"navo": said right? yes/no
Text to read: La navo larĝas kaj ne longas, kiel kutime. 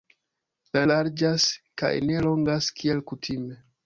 no